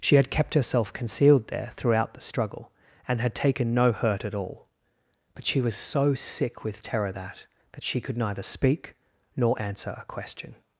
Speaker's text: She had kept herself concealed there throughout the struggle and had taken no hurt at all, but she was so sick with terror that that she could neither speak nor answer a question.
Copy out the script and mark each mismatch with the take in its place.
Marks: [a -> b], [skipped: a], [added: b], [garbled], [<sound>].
She had kept herself concealed there throughout the struggle and had taken no hurt at all, but she was so sick with terror that that she could neither speak nor answer a question.